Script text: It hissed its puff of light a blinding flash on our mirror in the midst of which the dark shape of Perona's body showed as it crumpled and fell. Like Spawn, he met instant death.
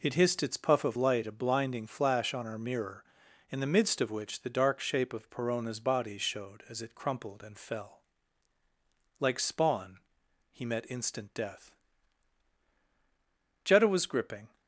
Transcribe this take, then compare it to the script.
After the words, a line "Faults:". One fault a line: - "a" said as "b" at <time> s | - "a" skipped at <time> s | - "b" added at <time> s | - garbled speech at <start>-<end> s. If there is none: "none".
It hissed its puff of light a blinding flash on our mirror in the midst of which the dark shape of Perona's body showed as it crumpled and fell. Like Spawn, he met instant death. Jetta was gripping
Faults:
- "Jetta was gripping" added at 13.6 s